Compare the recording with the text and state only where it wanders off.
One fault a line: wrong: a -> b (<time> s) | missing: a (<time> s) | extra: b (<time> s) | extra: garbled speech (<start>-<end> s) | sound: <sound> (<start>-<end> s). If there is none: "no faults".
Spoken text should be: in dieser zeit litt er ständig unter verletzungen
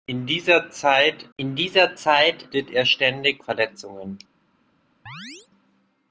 extra: in dieser zeit (1.4 s)
missing: unter (3.4 s)
sound: chirp (5.1-5.5 s)